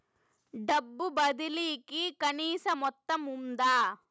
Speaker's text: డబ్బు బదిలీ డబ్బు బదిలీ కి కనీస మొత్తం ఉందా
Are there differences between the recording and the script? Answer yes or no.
yes